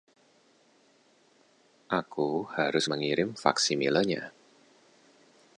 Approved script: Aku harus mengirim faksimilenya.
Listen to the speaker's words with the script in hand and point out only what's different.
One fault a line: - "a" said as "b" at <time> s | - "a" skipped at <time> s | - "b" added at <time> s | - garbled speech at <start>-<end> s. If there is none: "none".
none